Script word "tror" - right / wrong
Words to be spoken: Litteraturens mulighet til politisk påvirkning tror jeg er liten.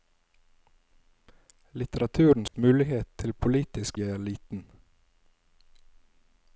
wrong